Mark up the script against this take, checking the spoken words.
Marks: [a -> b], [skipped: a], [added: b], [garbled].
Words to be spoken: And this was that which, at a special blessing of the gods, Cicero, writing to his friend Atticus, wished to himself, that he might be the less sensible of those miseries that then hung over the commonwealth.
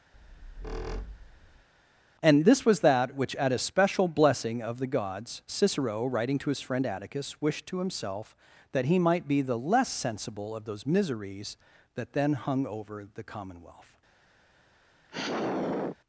And this was that which, at a special blessing of the gods, Cicero, writing to his friend Atticus, wished to himself, that he might be the less sensible of those miseries that then hung over the commonwealth.